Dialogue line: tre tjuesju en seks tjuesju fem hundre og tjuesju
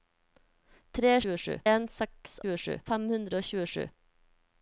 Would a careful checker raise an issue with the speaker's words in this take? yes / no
no